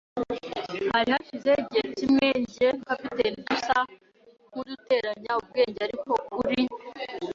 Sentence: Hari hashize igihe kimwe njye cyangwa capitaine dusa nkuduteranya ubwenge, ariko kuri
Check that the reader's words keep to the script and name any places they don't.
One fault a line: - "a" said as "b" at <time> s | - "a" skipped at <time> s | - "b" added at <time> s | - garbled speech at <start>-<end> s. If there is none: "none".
- "cyangwa" skipped at 2.7 s